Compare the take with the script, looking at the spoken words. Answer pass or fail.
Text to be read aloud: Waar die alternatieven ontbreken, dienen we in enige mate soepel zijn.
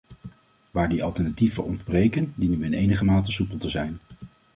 fail